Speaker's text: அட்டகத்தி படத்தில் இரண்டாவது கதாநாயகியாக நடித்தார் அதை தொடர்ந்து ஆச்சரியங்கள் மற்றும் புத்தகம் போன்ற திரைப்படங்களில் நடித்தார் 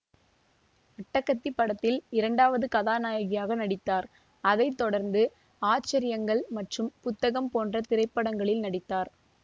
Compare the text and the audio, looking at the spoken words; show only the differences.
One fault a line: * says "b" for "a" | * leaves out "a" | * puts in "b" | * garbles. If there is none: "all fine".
all fine